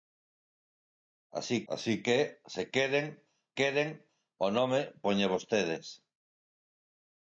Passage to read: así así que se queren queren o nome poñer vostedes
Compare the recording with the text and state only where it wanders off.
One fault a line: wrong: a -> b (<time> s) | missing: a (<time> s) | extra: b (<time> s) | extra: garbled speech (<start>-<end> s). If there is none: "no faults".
no faults